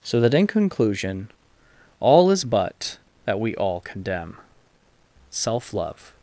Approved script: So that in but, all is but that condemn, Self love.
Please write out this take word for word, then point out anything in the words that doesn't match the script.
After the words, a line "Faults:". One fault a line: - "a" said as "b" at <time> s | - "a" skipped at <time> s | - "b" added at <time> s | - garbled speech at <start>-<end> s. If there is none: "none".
So that in conclusion, all is but that we all condemn, Self love.
Faults:
- "but" said as "conclusion" at 0.5 s
- "we all" added at 3.4 s